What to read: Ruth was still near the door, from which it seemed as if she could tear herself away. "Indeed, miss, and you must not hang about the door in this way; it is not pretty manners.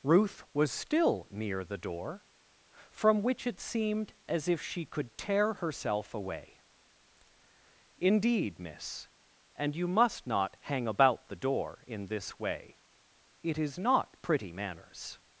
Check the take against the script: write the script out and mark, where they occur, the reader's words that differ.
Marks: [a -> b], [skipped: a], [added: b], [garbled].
Ruth was still near the door, from which it seemed as if she could tear herself away. "Indeed, miss, and you must not hang about the door in this way; it is not pretty manners.